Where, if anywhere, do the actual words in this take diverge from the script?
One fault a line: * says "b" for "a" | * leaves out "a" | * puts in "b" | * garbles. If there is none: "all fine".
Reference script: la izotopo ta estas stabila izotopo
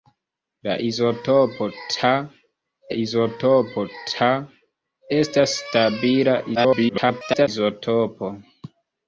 * puts in "izotopo ta"
* garbles